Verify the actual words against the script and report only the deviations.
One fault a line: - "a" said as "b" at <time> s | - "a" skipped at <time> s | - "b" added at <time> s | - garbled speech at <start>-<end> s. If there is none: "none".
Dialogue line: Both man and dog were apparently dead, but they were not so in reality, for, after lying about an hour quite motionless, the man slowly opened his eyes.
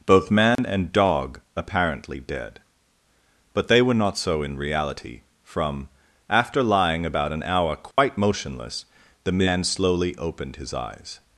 - "were" skipped at 1.4 s
- "for" said as "from" at 5.4 s